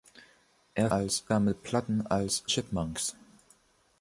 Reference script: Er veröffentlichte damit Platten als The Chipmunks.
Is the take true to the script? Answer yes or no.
no